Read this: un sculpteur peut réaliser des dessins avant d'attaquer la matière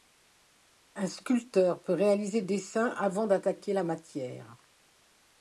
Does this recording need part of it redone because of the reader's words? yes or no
yes